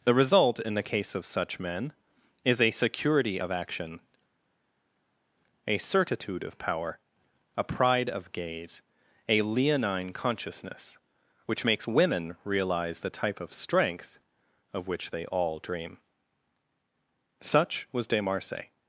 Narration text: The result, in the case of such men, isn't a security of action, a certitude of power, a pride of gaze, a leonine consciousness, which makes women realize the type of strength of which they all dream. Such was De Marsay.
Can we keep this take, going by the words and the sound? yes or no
no